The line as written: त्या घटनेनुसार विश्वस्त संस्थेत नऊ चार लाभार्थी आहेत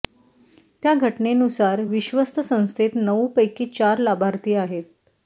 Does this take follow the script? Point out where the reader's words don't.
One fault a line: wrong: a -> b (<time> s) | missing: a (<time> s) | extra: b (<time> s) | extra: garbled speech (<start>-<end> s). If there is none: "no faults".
extra: पैकी (3.4 s)